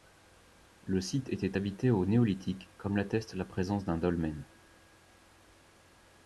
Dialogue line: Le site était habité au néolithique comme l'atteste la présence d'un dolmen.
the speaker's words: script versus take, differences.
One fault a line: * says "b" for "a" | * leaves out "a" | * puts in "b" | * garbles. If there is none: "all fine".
all fine